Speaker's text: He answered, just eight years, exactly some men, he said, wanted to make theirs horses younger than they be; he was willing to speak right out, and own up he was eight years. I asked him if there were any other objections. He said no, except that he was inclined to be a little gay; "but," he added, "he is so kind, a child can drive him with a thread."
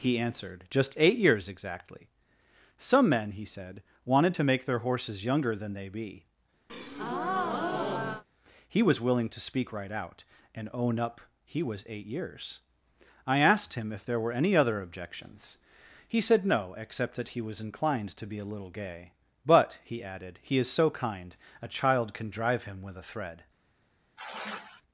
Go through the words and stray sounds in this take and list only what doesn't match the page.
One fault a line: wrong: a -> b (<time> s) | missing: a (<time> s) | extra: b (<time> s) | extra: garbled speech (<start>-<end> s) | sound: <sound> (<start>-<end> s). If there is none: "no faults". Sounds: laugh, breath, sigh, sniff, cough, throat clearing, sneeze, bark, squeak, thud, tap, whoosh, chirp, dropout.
wrong: theirs -> their (4.6 s)
sound: breath (6.7-8.2 s)
sound: sigh (24.2-24.8 s)